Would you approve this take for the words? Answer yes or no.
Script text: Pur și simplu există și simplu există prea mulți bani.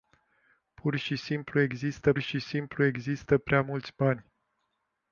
yes